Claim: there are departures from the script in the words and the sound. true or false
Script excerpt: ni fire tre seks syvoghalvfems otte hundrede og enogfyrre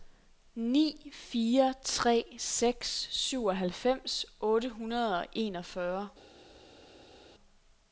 false